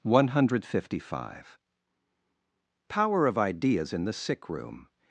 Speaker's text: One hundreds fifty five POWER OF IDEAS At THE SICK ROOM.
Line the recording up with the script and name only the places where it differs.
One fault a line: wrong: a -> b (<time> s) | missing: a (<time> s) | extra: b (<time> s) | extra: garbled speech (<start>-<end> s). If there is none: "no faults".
wrong: hundreds -> hundred (0.3 s)
wrong: At -> IN (3.9 s)